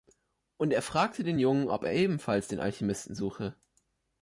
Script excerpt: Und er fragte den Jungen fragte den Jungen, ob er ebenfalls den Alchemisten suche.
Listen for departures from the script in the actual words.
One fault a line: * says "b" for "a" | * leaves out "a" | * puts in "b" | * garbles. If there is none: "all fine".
* leaves out "fragte den Jungen"